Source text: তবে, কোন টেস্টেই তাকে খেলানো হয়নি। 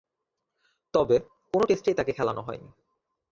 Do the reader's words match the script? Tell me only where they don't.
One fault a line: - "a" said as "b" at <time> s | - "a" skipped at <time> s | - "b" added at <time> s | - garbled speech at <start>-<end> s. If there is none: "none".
none